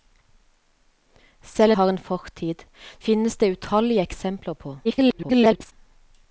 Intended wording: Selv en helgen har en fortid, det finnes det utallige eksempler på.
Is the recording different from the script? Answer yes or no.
yes